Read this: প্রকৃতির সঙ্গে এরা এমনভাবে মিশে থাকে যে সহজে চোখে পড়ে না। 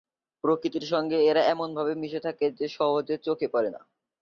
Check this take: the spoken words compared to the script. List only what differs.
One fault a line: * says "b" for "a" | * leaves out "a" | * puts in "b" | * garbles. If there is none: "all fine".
all fine